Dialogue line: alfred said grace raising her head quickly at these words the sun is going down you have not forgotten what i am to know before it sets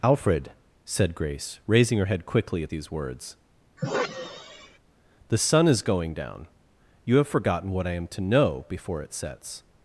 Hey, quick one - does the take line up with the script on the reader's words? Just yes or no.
no